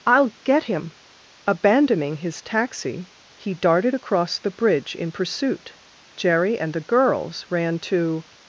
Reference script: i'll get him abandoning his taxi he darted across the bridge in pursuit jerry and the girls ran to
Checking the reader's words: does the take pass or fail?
pass